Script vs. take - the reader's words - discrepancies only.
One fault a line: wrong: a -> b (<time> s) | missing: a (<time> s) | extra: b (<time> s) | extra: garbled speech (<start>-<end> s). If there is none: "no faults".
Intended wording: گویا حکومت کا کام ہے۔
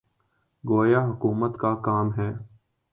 no faults